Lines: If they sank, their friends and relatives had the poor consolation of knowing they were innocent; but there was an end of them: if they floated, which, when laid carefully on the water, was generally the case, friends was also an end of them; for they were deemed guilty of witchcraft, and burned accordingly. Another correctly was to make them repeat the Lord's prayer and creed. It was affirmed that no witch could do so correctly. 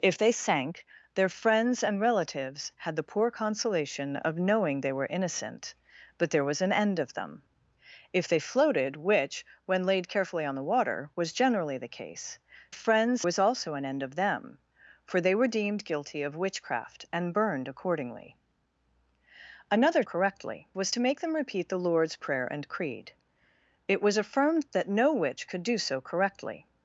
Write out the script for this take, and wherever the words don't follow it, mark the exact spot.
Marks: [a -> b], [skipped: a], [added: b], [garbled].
If they sank, their friends and relatives had the poor consolation of knowing they were innocent; but there was an end of them: if they floated, which, when laid carefully on the water, was generally the case, friends was also an end of them; for they were deemed guilty of witchcraft, and burned accordingly. Another correctly was to make them repeat the Lord's prayer and creed. It was affirmed that no witch could do so correctly.